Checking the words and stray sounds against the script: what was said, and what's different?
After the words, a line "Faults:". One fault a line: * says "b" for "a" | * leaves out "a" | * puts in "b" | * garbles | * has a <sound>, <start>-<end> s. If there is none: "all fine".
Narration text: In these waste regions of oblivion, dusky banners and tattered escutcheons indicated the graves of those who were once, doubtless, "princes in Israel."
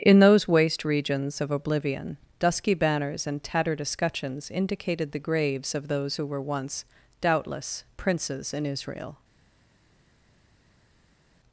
In those waste regions of oblivion, dusky banners and tattered escutcheons indicated the graves of those who were once, doubtless, "princes in Israel."
Faults:
* says "those" for "these"